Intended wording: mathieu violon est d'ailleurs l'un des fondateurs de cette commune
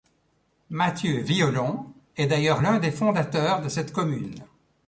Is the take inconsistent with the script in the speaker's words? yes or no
no